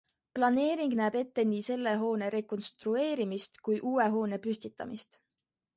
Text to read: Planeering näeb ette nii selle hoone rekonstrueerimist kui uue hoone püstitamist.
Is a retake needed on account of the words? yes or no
no